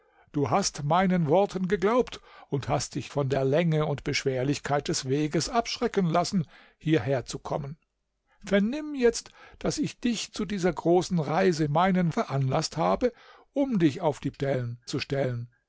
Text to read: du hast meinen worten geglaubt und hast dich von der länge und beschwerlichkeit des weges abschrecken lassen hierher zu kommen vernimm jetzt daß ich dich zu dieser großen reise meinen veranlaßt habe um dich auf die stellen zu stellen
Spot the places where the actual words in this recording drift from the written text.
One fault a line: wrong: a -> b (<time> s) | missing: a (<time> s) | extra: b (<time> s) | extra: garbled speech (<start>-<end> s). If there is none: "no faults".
no faults